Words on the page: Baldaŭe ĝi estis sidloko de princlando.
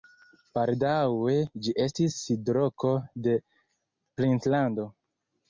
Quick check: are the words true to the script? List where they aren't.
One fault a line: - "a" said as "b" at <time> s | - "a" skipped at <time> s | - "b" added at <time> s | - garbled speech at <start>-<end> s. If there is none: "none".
none